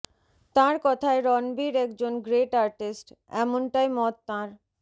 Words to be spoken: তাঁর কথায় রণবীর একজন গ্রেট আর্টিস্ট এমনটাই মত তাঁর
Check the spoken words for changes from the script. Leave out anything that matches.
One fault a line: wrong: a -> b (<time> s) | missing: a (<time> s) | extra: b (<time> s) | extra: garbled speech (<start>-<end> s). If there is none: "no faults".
no faults